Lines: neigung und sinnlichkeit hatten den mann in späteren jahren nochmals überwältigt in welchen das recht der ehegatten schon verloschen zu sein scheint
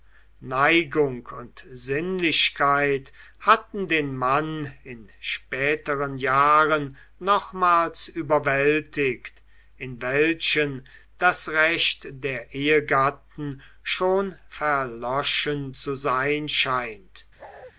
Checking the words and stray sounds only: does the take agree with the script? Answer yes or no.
no